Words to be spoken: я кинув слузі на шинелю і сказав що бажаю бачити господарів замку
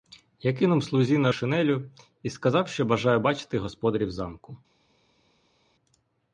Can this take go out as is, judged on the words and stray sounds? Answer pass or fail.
pass